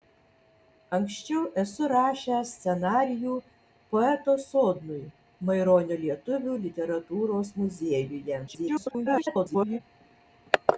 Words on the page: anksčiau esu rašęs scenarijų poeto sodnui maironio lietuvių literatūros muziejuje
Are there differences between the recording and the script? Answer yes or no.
yes